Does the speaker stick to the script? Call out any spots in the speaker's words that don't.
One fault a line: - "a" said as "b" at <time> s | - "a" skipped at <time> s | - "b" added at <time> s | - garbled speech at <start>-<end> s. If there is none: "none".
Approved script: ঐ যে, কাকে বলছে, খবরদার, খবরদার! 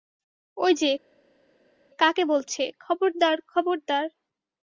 none